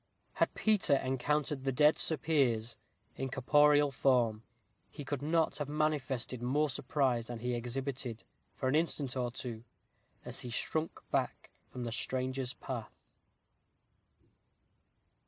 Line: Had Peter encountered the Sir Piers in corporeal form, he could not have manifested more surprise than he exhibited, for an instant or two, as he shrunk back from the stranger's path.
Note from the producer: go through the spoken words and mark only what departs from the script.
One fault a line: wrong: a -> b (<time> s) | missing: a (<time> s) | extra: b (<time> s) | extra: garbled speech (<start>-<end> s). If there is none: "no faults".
extra: dead (1.7 s)